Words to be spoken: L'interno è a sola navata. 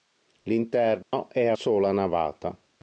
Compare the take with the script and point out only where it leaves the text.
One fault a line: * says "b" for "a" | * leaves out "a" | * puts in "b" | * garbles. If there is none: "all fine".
all fine